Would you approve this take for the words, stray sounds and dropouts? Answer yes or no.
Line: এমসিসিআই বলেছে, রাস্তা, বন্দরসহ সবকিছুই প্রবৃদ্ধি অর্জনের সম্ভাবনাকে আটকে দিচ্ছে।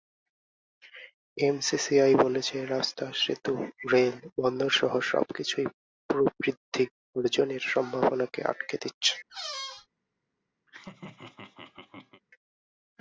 no